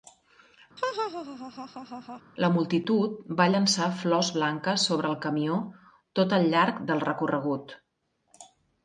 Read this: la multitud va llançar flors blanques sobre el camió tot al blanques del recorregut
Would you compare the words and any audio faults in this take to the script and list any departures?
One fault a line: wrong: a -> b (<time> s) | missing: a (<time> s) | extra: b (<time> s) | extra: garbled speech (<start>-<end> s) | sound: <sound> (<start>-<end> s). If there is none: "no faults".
sound: laugh (0.8-2.2 s)
wrong: blanques -> llarg (6.6 s)